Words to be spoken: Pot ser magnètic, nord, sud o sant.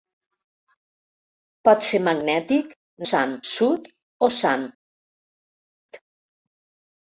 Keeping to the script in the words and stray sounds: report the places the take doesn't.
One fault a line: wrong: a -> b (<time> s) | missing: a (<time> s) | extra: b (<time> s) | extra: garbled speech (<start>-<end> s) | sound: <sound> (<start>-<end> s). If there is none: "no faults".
wrong: nord -> sant (3.1 s)